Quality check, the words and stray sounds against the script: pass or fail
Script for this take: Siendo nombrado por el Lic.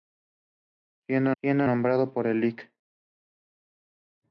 fail